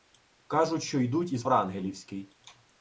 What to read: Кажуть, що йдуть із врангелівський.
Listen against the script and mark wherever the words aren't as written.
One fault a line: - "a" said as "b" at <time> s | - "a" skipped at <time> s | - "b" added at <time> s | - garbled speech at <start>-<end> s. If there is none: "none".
none